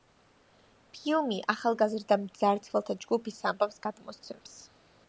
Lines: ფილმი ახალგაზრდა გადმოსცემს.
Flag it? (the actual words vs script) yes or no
yes